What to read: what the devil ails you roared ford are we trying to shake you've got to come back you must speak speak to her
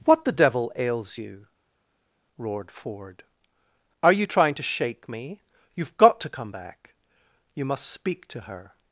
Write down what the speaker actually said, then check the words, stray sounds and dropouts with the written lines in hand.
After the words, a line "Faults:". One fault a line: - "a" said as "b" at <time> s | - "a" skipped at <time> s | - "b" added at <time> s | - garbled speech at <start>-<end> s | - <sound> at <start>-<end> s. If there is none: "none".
what the devil ails you roared ford are you trying to shake me you've got to come back you must speak to her
Faults:
- "we" said as "you" at 4.1 s
- "me" added at 5.1 s
- "speak" skipped at 8.3 s